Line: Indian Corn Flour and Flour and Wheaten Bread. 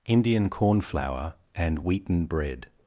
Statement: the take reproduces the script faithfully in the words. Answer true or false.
false